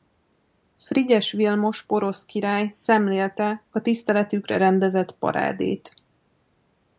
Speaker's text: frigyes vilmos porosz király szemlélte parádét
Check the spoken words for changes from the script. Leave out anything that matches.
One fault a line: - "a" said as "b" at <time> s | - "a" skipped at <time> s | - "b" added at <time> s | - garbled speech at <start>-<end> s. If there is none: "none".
- "a tiszteletükre rendezett" added at 3.7 s